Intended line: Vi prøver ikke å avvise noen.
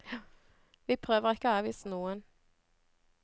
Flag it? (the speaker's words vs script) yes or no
no